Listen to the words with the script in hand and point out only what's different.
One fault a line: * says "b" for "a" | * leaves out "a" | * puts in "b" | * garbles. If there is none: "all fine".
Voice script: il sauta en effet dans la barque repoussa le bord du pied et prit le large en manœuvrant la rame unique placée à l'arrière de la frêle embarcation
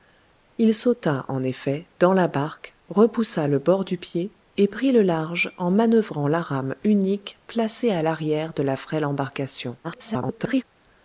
* garbles